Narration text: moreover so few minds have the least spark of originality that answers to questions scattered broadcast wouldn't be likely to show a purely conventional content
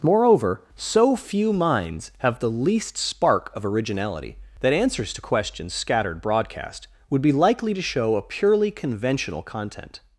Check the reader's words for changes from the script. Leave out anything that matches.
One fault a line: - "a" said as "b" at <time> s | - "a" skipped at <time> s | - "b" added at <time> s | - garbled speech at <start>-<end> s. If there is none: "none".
- "wouldn't" said as "would" at 7.1 s